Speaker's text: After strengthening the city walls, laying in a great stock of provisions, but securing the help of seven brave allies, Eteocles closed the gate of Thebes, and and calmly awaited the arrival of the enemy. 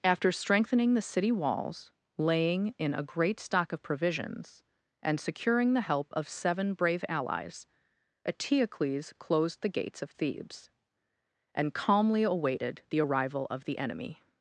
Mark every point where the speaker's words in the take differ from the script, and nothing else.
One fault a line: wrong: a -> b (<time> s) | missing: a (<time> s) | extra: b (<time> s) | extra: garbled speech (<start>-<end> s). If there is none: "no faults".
wrong: but -> and (5.0 s)
wrong: gate -> gates (9.7 s)
missing: and (11.7 s)